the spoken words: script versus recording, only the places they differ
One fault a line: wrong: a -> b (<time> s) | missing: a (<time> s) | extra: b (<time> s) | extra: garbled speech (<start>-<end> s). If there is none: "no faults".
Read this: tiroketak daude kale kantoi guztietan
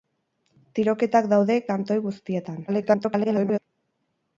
missing: kale (1.6 s)
extra: garbled speech (2.7-3.6 s)